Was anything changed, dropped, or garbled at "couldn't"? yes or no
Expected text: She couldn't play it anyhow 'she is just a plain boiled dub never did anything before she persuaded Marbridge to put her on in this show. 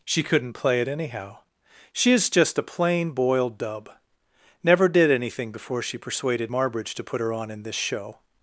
no